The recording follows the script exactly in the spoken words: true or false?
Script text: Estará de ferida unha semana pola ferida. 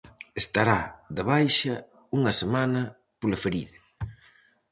false